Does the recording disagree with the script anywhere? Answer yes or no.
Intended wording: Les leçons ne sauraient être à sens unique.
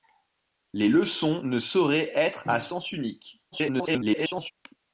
yes